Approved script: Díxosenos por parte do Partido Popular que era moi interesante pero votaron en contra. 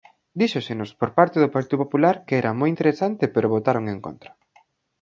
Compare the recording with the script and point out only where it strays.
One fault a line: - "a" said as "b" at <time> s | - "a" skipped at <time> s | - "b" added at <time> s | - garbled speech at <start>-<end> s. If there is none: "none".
none